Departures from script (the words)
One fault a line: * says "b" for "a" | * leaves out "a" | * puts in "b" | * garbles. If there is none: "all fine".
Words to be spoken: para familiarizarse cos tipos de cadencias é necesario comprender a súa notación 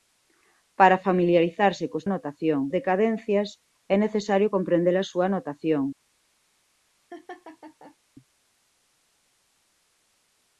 * says "notación" for "tipos"